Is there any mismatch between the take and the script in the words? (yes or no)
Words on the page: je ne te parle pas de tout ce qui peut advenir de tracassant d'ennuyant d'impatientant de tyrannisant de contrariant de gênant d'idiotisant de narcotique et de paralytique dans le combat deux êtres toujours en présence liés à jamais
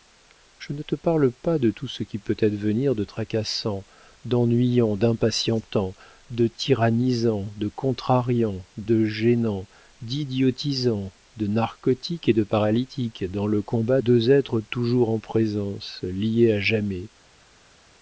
no